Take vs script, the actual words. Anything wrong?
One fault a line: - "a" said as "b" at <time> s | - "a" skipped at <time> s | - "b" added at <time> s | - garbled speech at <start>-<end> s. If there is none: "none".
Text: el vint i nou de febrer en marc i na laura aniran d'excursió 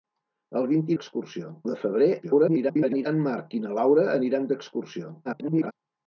- "nou" said as "d'excursió" at 0.9 s
- garbled speech at 2.2-3.1 s
- garbled speech at 5.2-5.7 s